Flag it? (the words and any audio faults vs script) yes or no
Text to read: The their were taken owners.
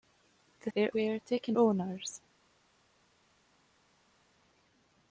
no